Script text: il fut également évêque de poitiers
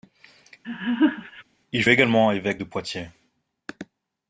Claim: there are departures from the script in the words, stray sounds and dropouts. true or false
true